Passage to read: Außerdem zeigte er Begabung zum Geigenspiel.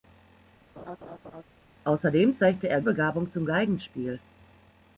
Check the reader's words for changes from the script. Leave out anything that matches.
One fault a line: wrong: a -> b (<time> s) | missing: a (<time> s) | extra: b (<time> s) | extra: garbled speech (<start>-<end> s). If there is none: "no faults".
no faults